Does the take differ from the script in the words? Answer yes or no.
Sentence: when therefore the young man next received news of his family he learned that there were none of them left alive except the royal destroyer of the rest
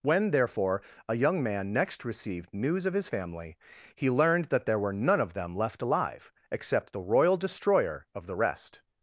yes